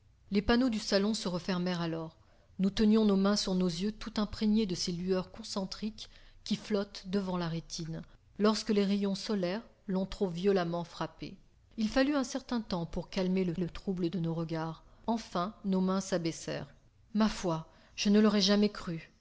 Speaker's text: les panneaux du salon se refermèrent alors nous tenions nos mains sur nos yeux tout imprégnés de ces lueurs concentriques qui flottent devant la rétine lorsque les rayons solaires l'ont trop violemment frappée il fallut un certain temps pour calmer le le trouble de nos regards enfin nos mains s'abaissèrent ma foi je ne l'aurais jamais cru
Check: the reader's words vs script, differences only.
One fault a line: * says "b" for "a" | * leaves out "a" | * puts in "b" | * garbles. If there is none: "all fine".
all fine